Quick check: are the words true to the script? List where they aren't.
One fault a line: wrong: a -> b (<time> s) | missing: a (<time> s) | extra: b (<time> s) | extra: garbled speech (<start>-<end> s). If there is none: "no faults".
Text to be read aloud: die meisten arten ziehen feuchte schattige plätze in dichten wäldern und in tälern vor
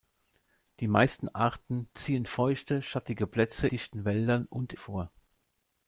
missing: in (3.7 s)
missing: in tälern (4.7 s)